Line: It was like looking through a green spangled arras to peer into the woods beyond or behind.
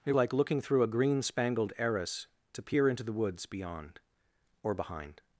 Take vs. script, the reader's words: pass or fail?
fail